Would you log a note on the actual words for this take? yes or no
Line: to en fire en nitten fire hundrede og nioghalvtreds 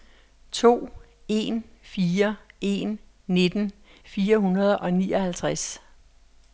no